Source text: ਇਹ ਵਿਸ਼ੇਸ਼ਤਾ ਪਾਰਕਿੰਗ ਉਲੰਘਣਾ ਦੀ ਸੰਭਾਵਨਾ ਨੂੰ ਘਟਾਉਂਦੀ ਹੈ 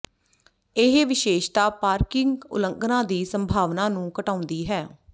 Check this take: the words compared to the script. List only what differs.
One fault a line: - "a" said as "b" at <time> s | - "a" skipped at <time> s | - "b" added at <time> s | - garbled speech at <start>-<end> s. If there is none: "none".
none